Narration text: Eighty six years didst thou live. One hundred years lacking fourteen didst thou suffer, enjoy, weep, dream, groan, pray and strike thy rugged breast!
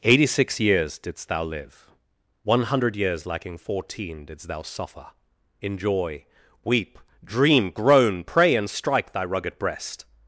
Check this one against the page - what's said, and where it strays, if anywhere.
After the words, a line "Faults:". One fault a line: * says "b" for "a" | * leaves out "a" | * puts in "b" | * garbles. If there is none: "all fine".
Eighty six years didst thou live. One hundred years lacking fourteen didst thou suffer, enjoy, weep, dream, groan, pray and strike thy rugged breast!
Faults:
all fine